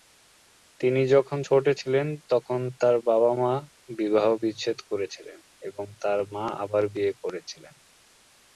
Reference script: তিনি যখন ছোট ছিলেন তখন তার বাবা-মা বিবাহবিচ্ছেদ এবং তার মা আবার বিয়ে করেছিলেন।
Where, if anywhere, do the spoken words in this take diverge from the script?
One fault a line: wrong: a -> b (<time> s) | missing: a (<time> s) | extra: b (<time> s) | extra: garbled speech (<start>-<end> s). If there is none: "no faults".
extra: করেছিলেন (4.9 s)